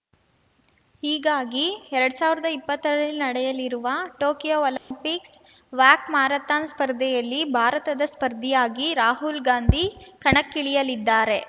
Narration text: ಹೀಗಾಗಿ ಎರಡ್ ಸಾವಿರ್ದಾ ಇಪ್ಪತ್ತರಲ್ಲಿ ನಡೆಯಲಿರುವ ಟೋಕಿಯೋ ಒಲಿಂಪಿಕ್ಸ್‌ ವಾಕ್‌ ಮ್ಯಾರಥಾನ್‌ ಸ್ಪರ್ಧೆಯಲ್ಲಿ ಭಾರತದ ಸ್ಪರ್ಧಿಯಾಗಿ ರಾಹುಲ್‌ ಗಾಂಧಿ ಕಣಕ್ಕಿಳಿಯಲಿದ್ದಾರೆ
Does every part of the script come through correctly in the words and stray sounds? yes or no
no